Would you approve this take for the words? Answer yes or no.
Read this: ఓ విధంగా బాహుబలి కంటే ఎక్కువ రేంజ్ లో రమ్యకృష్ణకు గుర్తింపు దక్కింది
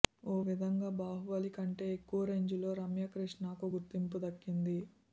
yes